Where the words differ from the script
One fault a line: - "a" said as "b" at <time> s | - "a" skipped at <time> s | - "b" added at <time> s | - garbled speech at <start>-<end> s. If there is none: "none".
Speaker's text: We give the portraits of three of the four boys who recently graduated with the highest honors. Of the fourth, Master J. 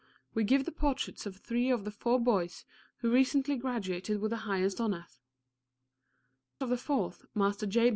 none